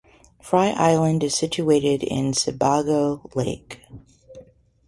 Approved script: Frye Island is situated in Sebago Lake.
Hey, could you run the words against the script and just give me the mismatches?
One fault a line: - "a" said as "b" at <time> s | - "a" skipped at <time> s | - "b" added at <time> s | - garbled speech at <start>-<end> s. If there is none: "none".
none